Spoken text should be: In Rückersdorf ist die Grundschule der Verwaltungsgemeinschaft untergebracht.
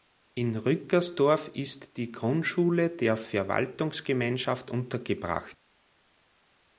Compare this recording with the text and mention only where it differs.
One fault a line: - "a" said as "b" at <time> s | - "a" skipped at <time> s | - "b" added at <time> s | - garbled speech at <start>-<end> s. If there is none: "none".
none